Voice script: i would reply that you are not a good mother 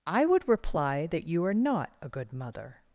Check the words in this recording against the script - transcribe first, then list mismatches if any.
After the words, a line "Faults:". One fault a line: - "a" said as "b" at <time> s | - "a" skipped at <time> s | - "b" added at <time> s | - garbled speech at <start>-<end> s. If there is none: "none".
i would reply that you are not a good mother
Faults:
none